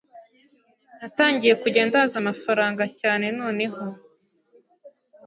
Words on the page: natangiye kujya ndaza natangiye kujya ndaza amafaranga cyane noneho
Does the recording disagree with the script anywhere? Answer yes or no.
yes